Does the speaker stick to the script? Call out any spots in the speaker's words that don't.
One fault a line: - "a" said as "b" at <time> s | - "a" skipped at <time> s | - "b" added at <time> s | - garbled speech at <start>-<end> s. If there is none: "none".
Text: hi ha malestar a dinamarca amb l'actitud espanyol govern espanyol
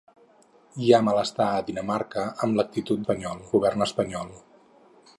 none